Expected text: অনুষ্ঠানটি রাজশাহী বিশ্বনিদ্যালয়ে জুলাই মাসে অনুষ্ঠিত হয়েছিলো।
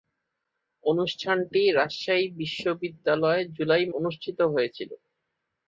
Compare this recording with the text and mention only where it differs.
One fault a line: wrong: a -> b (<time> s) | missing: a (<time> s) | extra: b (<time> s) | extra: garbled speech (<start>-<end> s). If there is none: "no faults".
missing: মাসে (3.9 s)